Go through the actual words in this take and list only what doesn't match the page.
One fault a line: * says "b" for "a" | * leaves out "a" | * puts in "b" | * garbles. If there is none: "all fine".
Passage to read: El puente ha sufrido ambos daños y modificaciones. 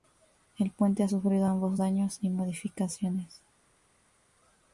all fine